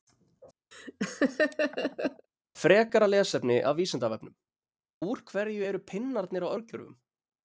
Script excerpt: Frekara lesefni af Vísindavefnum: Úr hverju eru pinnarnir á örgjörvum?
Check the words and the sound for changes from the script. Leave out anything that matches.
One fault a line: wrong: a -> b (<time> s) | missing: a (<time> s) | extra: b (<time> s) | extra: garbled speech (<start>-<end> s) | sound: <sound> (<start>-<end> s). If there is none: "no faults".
sound: laugh (0.7-2.3 s)